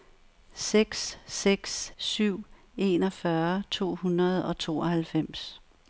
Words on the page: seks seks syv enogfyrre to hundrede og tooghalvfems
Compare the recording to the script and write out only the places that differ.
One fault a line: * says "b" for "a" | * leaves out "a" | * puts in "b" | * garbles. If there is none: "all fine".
all fine